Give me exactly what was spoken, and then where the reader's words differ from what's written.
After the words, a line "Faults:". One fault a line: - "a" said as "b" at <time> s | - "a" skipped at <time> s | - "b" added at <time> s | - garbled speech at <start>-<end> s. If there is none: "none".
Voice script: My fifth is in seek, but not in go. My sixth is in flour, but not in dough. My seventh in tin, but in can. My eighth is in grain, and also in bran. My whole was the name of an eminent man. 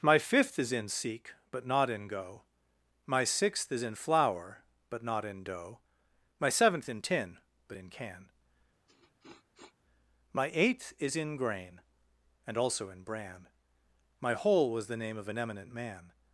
My fifth is in seek, but not in go. My sixth is in flour, but not in dough. My seventh in tin, but in can. My eighth is in grain, and also in bran. My whole was the name of an eminent man.
Faults:
none